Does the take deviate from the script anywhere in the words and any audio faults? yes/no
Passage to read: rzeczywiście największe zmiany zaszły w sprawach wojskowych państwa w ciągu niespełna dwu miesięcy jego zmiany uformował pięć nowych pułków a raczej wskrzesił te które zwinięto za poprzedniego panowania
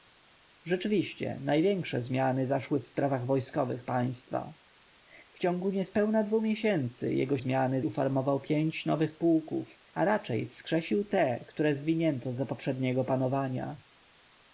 no